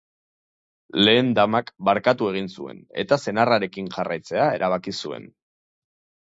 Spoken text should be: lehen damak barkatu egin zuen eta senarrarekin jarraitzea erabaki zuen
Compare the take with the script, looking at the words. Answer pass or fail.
pass